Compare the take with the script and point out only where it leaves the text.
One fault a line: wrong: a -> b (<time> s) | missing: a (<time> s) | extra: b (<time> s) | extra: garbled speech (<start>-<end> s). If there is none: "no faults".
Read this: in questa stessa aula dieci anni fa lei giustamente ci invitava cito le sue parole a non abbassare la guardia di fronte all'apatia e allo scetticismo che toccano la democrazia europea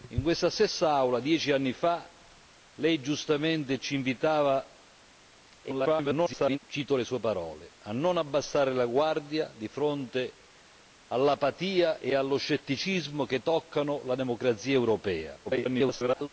extra: garbled speech (5.6-6.6 s)
extra: garbled speech (15.5-16.3 s)